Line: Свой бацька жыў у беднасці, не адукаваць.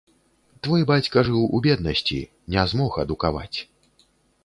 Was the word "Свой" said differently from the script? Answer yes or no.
yes